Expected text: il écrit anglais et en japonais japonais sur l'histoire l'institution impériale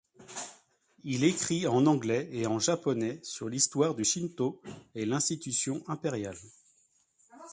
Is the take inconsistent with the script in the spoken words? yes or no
yes